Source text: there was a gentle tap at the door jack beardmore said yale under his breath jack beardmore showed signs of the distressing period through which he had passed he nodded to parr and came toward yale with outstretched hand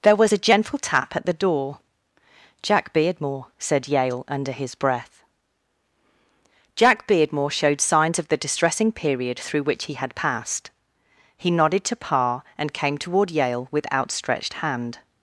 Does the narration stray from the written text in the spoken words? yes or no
no